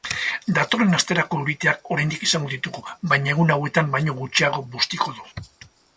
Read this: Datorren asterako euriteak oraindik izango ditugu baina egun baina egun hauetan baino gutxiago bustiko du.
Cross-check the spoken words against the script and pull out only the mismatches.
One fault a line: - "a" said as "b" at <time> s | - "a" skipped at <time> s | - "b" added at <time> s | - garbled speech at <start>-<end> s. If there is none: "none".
- "baina egun" skipped at 3.5 s